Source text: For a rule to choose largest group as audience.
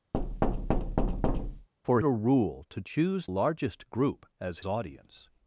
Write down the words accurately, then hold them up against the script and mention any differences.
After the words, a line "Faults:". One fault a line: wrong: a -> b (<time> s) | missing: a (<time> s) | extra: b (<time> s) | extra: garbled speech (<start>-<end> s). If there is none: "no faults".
For a rule to choose largest group as audience.
Faults:
no faults